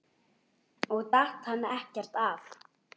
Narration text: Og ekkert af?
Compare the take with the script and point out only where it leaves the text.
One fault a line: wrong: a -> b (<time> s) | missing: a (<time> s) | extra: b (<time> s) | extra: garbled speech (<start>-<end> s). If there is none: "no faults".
extra: datt hann (1.2 s)